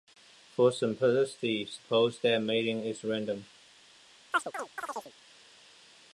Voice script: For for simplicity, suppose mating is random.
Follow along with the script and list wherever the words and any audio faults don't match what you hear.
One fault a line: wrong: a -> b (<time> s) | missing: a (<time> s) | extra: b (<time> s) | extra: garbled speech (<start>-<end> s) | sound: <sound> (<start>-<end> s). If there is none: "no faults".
missing: for (0.7 s)
extra: that (2.2 s)
sound: chirp (4.3-5.1 s)